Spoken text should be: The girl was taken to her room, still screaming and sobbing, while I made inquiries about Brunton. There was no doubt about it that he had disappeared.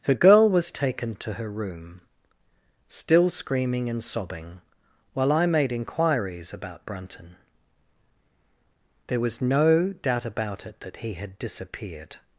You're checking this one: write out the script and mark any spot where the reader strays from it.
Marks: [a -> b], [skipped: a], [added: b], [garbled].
The girl was taken to her room, still screaming and sobbing, while I made inquiries about Brunton. There was no doubt about it that he had disappeared.